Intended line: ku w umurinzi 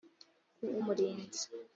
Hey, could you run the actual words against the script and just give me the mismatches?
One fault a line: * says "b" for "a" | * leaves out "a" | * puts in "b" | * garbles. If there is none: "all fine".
all fine